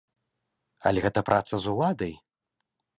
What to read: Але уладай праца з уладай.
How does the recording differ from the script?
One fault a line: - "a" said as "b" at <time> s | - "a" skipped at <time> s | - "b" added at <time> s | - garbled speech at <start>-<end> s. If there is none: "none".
- "уладай" said as "гэта" at 1.0 s